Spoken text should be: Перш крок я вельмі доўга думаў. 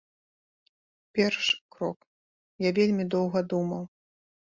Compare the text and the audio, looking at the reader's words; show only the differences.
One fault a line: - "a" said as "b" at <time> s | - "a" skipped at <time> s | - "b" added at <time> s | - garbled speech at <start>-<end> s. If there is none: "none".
none